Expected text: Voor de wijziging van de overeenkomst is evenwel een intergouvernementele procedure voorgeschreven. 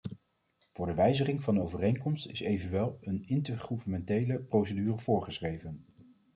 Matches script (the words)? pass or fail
pass